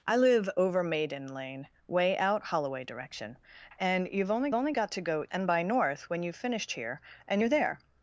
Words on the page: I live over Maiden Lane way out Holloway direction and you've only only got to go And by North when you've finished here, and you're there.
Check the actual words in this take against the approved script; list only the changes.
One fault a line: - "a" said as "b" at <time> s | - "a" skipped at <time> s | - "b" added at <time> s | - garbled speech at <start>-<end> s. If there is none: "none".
none